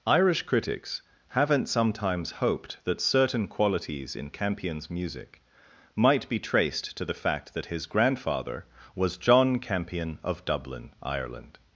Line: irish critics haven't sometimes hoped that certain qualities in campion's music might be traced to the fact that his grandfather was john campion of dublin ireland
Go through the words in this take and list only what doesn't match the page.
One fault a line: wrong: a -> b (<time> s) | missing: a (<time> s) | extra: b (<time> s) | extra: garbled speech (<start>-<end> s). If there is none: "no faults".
no faults